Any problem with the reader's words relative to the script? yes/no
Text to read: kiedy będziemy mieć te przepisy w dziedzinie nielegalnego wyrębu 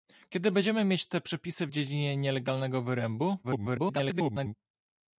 yes